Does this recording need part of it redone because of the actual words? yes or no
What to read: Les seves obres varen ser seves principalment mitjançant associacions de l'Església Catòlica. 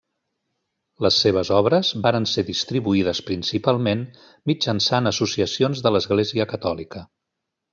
yes